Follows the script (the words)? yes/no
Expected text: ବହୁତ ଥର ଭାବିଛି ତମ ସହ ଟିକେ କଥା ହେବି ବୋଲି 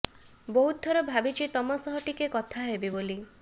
yes